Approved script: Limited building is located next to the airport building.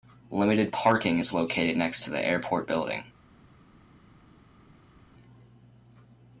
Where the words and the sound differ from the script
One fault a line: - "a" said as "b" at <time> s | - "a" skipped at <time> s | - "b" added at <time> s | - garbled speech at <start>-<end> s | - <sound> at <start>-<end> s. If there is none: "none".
- "building" said as "parking" at 0.7 s